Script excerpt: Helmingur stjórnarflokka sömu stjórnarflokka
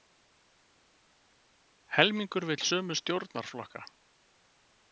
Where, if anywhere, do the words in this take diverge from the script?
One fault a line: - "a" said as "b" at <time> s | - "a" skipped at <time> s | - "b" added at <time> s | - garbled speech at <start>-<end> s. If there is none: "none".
- "stjórnarflokka" said as "vill" at 2.5 s